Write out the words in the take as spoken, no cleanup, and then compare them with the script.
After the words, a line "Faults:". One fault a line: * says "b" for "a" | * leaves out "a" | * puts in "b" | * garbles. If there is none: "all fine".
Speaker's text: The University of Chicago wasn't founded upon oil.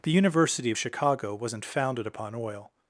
The University of Chicago wasn't founded upon oil.
Faults:
all fine